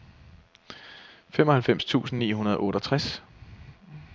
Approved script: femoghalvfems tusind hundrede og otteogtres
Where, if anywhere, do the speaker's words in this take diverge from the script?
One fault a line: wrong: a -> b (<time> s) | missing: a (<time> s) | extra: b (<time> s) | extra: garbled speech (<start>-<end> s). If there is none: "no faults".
extra: ni (2.2 s)